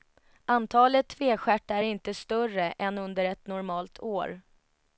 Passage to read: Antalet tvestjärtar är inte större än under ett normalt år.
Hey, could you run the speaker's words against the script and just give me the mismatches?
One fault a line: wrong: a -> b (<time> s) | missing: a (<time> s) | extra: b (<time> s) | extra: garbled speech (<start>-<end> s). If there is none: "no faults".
no faults